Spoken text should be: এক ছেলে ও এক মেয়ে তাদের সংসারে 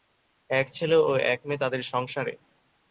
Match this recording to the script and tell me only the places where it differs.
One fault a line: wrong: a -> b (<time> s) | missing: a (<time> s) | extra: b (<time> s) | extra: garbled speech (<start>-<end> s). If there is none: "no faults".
no faults